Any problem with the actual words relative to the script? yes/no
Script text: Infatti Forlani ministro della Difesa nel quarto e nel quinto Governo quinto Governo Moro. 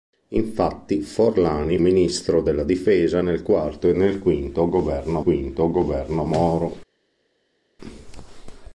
no